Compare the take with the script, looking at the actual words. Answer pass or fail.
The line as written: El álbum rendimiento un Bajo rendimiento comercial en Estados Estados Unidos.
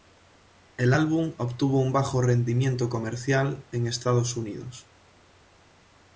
fail